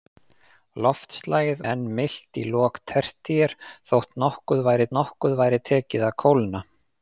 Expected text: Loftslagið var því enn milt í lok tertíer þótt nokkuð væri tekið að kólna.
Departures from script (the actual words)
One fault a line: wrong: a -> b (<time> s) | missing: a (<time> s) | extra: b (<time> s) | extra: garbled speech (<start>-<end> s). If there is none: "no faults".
missing: var því (1.6 s)
extra: nokkuð væri (5.0 s)